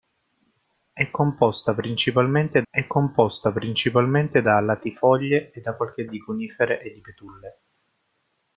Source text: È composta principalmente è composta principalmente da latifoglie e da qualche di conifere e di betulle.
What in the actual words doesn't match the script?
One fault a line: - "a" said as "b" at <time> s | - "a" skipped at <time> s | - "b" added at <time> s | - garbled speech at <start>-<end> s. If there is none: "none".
none